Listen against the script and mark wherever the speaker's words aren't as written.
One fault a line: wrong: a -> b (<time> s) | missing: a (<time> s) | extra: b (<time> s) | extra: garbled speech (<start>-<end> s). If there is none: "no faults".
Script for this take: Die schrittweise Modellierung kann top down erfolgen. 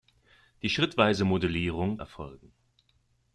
missing: kann top down (2.0 s)